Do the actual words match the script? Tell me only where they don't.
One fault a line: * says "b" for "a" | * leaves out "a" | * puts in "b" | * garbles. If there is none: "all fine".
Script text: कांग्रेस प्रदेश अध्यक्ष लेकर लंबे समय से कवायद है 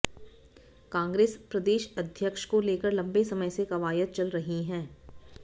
* puts in "को"
* puts in "चल रही"